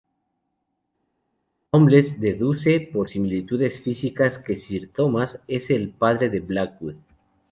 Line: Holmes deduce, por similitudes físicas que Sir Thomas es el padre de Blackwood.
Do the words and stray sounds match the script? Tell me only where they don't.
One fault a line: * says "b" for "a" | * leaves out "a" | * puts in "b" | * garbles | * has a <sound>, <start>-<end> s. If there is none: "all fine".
all fine